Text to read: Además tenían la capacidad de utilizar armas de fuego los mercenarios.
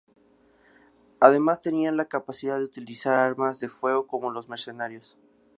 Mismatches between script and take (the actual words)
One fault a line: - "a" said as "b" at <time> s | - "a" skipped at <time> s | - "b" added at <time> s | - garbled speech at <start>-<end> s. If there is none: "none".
- "como" added at 4.1 s